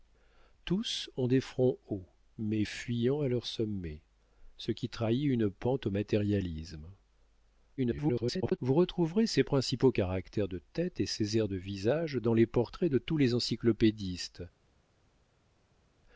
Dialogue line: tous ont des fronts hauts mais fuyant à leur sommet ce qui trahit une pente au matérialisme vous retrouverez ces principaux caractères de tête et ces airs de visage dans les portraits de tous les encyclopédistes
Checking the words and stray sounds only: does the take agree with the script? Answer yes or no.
no